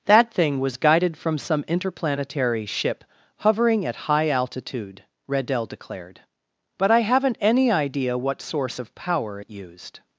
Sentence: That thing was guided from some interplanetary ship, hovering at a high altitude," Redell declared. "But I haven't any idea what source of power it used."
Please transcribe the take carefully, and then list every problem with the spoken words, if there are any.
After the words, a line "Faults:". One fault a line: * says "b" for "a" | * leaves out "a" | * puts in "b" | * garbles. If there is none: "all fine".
That thing was guided from some interplanetary ship, hovering at high altitude," Redell declared. "But I haven't any idea what source of power it used."
Faults:
* leaves out "a"